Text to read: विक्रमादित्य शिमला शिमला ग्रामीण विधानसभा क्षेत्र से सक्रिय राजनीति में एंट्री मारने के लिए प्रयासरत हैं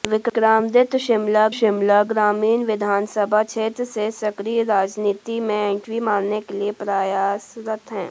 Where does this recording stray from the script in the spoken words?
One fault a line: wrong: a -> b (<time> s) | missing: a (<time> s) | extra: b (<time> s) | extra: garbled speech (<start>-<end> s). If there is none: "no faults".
no faults